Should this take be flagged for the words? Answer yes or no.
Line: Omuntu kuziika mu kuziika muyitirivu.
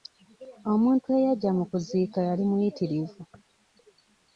yes